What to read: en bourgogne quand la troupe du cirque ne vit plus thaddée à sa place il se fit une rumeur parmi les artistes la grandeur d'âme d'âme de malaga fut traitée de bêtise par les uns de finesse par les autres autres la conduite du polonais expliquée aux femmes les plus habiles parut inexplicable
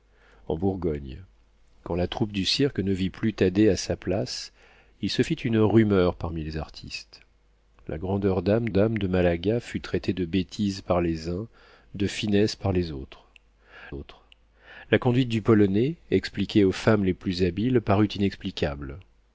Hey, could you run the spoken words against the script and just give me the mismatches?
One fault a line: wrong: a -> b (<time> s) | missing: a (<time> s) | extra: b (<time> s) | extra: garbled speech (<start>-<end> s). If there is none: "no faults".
no faults